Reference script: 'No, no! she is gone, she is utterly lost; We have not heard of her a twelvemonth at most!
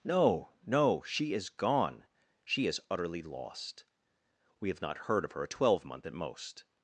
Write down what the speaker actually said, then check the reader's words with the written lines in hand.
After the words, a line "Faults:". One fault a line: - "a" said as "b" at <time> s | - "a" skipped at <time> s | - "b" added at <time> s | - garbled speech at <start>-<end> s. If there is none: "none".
'No, no! she is gone, she is utterly lost; We have not heard of her a twelvemonth at most!
Faults:
none